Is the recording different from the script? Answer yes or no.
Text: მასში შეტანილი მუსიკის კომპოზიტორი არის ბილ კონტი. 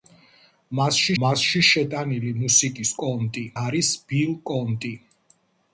yes